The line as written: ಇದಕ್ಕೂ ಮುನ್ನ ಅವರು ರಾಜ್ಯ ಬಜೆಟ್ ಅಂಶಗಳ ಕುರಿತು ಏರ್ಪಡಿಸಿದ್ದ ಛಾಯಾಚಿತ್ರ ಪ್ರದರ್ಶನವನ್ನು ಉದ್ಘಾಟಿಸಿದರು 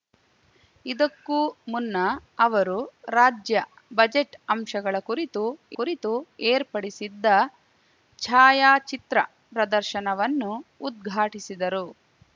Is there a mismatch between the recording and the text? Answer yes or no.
yes